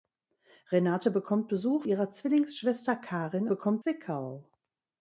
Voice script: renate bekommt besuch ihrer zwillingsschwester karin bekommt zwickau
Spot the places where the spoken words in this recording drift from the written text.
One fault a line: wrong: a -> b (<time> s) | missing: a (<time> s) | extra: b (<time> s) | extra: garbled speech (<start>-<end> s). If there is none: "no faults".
no faults